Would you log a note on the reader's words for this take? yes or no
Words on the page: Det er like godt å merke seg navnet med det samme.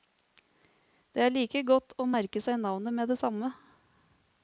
no